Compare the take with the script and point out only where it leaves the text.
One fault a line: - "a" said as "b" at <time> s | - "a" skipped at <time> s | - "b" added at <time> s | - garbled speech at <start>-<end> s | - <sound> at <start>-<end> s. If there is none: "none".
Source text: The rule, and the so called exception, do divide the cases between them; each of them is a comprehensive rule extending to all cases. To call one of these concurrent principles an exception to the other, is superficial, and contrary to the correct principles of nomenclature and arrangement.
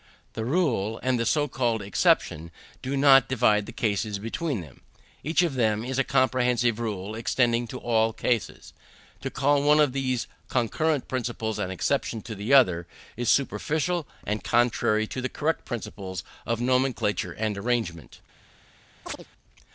- "not" added at 3.0 s
- chirp at 19.0-19.3 s